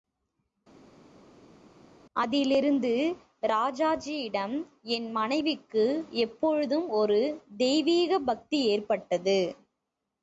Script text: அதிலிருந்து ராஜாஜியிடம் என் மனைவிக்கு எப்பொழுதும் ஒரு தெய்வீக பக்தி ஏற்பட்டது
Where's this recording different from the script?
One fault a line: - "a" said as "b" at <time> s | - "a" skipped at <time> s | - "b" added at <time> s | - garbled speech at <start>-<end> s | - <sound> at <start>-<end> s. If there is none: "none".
none